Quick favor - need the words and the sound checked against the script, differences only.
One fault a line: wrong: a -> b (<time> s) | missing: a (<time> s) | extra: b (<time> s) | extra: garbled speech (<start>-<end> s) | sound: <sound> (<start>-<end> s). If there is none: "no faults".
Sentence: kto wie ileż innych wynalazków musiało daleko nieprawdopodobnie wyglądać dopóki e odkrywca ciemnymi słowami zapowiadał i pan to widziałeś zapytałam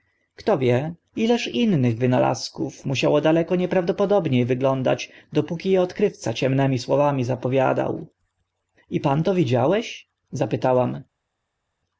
no faults